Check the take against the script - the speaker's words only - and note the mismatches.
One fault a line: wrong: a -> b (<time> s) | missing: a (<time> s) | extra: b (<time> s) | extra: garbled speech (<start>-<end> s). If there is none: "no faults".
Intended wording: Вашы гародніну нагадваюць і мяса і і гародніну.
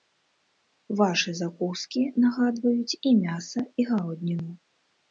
wrong: гародніну -> закускі (1.4 s)
missing: і (3.9 s)